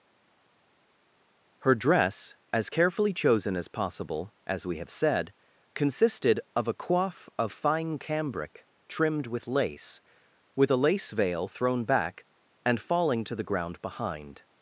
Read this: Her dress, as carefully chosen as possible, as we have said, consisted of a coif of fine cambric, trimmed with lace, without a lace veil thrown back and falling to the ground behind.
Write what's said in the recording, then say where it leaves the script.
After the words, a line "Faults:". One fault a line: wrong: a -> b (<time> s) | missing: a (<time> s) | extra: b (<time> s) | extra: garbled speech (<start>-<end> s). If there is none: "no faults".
Her dress, as carefully chosen as possible, as we have said, consisted of a coif of fine cambric, trimmed with lace, with a lace veil thrown back and falling to the ground behind.
Faults:
wrong: without -> with (10.5 s)